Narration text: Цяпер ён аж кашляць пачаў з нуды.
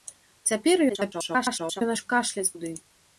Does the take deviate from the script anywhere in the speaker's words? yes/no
yes